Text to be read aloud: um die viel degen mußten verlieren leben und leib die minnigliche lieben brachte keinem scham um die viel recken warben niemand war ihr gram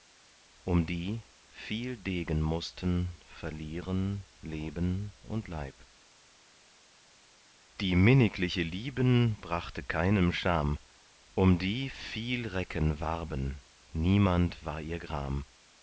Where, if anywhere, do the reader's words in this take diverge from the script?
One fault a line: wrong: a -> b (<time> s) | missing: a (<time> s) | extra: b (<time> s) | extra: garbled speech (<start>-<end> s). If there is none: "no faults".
no faults